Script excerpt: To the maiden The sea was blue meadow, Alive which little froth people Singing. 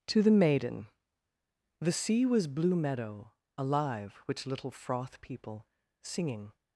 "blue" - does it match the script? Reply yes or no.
yes